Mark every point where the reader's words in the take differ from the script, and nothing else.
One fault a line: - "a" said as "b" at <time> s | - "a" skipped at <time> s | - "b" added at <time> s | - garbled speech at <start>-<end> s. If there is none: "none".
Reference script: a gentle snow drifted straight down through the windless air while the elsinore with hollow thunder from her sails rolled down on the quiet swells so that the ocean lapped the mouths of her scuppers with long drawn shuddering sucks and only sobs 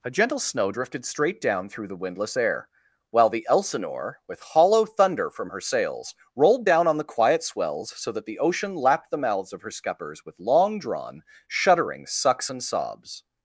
- "only" skipped at 12.6 s